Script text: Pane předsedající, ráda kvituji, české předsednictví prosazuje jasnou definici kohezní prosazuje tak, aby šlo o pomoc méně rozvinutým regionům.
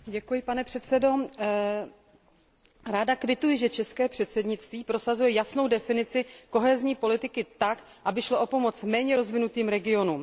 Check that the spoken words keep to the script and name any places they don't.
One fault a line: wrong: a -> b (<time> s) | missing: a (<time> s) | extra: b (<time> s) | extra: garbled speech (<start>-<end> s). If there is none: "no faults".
extra: že (3.6 s)
wrong: prosazuje -> politiky (7.0 s)